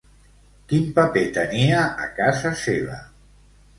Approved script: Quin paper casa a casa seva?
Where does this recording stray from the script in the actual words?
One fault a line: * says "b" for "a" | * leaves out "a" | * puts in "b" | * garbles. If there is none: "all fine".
* says "tenia" for "casa"